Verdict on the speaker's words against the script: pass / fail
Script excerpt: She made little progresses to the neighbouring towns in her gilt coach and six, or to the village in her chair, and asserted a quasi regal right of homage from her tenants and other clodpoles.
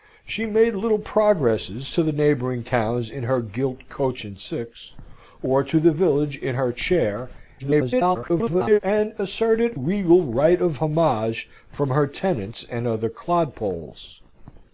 fail